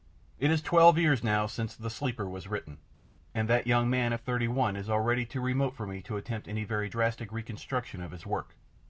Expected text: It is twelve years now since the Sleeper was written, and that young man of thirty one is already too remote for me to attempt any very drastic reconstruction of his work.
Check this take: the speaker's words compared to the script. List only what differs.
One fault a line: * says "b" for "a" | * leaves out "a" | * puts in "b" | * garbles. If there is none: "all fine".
all fine